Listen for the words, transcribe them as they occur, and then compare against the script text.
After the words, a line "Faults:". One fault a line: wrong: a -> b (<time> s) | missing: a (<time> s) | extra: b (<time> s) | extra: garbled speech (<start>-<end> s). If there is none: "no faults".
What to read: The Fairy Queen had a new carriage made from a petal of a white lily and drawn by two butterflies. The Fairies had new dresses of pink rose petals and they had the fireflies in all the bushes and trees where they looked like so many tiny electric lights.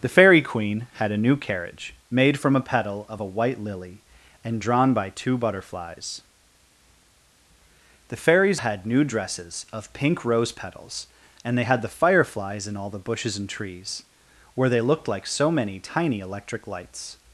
The Fairy Queen had a new carriage made from a petal of a white lily and drawn by two butterflies. The Fairies had new dresses of pink rose petals and they had the fireflies in all the bushes and trees where they looked like so many tiny electric lights.
Faults:
no faults